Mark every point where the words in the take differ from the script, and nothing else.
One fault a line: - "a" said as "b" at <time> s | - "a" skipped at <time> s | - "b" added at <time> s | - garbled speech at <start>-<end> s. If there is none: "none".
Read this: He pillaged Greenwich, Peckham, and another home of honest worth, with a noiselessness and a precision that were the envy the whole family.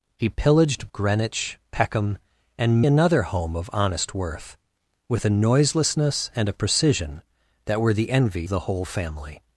none